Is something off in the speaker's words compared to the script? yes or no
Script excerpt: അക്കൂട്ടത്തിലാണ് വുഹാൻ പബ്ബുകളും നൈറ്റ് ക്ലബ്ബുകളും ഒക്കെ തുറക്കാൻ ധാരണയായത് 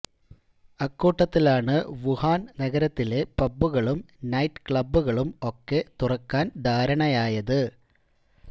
yes